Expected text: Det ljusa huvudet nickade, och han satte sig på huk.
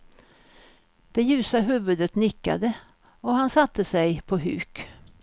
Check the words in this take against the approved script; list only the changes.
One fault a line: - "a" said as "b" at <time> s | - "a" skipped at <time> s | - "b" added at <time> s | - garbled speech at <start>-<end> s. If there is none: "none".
none